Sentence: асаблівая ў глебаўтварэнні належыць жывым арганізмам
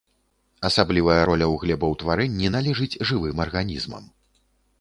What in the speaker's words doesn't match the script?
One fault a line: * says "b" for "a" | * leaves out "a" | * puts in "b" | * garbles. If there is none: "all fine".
* puts in "роля"